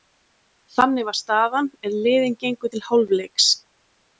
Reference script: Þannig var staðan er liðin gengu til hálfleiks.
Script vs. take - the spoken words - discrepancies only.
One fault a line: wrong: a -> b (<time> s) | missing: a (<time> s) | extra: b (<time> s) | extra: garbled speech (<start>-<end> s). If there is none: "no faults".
no faults